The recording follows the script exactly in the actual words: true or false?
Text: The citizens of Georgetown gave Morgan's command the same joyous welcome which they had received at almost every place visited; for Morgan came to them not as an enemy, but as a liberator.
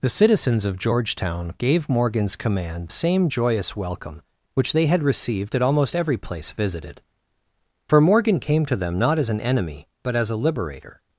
false